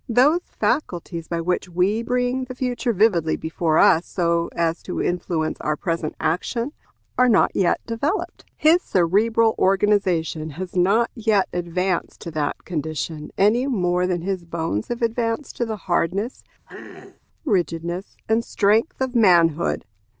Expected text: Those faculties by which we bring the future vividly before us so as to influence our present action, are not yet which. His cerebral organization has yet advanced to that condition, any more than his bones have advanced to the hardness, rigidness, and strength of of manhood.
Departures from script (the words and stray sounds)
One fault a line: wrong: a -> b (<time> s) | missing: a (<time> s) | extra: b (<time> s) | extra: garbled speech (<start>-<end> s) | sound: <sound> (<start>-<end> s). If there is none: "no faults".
wrong: which -> developed (7.8 s)
extra: not (10.8 s)
sound: throat clearing (16.7-17.2 s)
missing: of (19.1 s)